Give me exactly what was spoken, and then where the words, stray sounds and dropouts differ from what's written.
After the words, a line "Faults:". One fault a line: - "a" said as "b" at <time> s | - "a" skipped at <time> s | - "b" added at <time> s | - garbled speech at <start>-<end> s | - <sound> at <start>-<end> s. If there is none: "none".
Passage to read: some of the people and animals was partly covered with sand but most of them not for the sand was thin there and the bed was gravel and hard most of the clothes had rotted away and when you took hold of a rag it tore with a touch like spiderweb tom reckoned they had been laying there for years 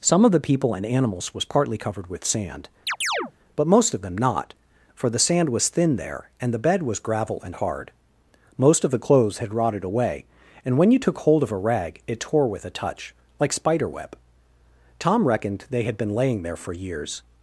some of the people and animals was partly covered with sand but most of them not for the sand was thin there and the bed was gravel and hard most of the clothes had rotted away and when you took hold of a rag it tore with a touch like spiderweb tom reckoned they had been laying there for years
Faults:
- chirp at 2.9-3.3 s